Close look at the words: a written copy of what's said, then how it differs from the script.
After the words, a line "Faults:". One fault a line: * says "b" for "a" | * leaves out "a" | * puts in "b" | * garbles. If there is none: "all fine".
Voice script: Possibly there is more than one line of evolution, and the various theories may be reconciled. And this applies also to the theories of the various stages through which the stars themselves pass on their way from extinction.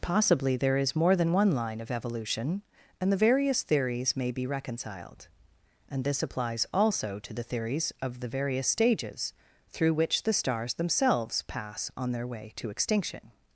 Possibly there is more than one line of evolution, and the various theories may be reconciled. And this applies also to the theories of the various stages through which the stars themselves pass on their way to extinction.
Faults:
* says "to" for "from"